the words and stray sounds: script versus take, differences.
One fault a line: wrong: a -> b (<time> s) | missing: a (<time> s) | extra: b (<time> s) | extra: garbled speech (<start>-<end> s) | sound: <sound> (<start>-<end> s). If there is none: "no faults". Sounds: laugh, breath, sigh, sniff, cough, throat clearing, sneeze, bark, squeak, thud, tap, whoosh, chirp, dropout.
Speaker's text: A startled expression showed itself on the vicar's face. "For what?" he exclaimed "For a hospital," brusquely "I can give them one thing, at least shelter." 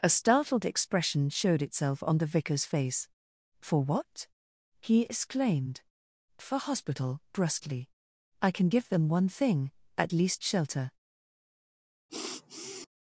missing: a (6.6 s)
sound: sniff (12.1-12.9 s)